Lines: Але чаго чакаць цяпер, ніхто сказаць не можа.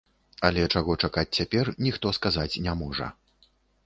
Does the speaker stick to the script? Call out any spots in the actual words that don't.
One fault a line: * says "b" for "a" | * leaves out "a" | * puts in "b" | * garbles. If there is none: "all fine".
all fine